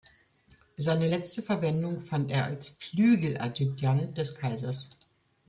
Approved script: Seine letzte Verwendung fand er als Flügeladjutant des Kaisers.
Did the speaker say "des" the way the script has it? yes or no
yes